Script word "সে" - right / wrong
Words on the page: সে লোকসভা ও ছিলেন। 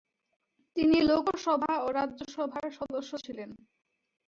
wrong